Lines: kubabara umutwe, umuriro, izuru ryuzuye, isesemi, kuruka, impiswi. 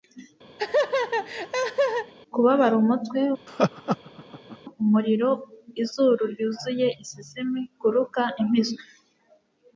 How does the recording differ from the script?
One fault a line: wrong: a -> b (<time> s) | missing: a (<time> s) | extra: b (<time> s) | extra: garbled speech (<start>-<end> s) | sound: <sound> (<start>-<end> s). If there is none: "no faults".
sound: laugh (0.6-2.1 s)
sound: laugh (3.5-4.6 s)